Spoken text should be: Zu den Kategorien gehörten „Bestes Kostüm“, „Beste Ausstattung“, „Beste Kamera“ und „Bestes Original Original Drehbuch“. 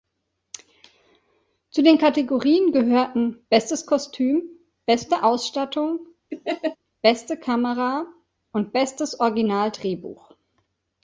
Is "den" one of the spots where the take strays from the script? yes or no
no